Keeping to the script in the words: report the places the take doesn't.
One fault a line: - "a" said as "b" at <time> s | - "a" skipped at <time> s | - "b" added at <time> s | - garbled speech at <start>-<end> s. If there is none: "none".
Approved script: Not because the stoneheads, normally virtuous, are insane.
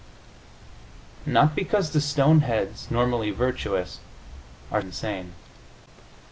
none